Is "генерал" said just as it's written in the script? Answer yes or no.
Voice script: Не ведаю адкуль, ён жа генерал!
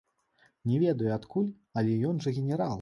yes